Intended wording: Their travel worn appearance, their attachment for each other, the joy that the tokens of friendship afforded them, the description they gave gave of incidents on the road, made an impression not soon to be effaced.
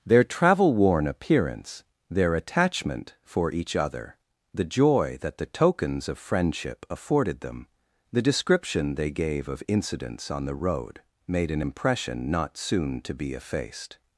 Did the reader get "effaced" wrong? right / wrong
right